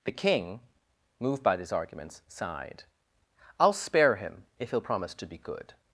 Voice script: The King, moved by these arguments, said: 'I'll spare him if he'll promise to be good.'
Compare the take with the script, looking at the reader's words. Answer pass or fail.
fail